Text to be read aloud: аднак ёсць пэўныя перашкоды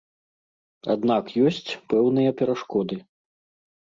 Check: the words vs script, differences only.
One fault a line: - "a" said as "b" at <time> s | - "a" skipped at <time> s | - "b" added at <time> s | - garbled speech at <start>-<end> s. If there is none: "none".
none